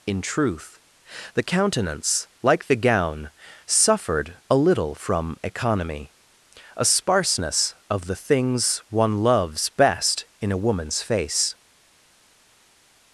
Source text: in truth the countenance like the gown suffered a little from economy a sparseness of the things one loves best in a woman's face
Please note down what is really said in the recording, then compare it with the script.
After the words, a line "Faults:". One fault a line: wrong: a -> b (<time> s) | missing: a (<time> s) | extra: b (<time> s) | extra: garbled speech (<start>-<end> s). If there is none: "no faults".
in truth the countenance like the gown suffered a little from economy a sparseness of the things one loves best in a woman's face
Faults:
no faults